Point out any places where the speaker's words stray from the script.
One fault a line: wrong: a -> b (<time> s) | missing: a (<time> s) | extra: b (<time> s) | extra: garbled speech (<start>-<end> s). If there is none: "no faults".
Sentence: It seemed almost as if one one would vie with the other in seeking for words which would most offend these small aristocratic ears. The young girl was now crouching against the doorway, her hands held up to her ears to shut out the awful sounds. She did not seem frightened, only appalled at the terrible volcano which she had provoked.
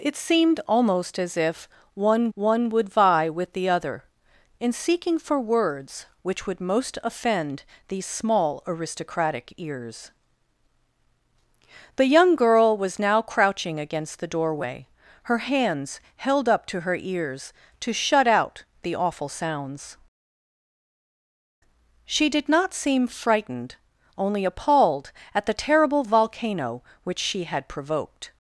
no faults